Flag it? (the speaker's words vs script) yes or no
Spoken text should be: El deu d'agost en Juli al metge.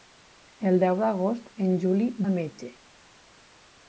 no